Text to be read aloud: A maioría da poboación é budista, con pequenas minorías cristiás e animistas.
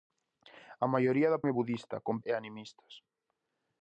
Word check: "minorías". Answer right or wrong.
wrong